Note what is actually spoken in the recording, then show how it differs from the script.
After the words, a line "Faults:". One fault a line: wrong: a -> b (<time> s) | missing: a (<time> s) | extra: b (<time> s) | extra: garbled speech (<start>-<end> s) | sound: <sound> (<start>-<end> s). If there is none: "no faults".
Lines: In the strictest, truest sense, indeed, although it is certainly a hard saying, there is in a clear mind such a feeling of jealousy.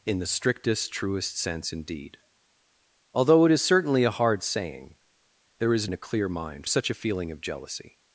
In the strictest, truest sense, indeed, although it is certainly a hard saying, there is in a clear mind such a feeling of jealousy.
Faults:
no faults